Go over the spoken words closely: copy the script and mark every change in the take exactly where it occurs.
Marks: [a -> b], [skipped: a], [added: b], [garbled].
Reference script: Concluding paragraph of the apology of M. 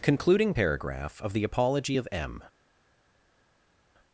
Concluding paragraph of the apology of M.